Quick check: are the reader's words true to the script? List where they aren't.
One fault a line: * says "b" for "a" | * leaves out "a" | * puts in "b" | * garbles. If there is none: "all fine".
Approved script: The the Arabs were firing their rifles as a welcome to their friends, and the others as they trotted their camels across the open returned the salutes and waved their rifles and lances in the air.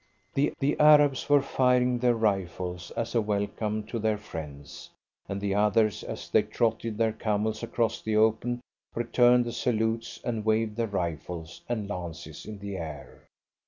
all fine